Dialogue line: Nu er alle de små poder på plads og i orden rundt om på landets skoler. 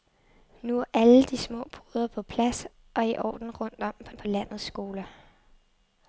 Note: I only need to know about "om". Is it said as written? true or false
true